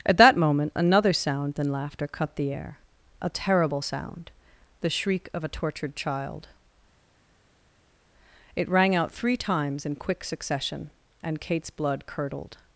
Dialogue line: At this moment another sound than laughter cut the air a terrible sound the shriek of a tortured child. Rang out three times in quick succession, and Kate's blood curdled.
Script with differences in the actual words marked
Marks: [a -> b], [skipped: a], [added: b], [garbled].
At [this -> that] moment another sound than laughter cut the air a terrible sound the shriek of a tortured child. [added: It] Rang out three times in quick succession, and Kate's blood curdled.